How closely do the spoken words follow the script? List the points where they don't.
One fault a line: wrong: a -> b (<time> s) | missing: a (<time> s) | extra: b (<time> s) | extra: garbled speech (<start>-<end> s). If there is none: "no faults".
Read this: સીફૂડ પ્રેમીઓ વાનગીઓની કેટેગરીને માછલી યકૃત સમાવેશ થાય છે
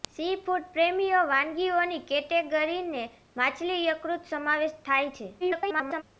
extra: garbled speech (5.4-6.0 s)